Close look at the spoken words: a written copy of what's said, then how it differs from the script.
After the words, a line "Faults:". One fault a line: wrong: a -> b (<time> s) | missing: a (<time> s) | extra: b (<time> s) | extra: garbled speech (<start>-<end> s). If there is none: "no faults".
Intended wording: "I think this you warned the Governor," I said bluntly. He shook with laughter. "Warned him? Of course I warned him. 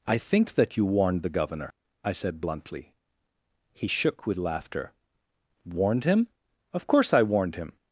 "I think that you warned the Governor," I said bluntly. He shook with laughter. "Warned him? Of course I warned him.
Faults:
wrong: this -> that (0.6 s)